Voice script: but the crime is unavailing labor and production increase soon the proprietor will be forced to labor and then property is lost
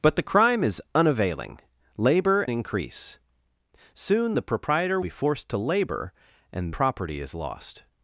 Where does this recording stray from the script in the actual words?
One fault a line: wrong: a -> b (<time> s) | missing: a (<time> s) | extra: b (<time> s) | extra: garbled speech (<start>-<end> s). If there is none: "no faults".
missing: and production (2.4 s)
missing: will (5.0 s)
missing: then (6.7 s)